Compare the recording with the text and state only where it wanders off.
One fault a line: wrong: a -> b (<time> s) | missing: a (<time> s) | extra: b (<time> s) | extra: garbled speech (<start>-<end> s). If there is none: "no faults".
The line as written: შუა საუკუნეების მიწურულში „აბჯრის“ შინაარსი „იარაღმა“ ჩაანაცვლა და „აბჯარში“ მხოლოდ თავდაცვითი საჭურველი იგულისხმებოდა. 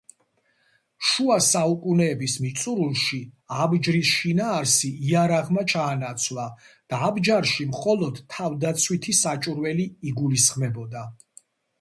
no faults